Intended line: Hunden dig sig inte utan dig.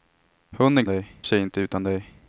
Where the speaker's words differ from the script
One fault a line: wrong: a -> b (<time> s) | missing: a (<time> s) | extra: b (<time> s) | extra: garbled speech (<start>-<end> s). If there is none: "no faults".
no faults